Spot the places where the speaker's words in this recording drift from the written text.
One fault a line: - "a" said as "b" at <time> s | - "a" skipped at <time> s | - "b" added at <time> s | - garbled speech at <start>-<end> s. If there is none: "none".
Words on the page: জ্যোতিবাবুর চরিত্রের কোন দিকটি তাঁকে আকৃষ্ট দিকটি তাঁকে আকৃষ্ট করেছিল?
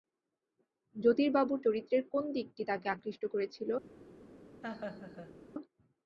- "দিকটি তাঁকে আকৃষ্ট" skipped at 3.2 s